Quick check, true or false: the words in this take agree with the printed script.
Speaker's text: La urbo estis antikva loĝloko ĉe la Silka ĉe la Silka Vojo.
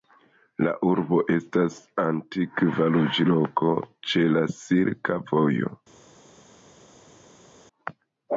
false